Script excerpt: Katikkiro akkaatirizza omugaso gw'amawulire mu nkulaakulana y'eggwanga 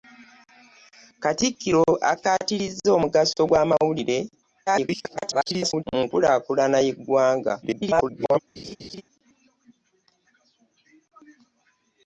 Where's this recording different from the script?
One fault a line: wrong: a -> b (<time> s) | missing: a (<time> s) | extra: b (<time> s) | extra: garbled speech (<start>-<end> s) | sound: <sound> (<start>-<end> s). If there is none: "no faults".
extra: garbled speech (4.7-5.8 s)
extra: garbled speech (7.6-8.4 s)
sound: laugh (8.6-9.0 s)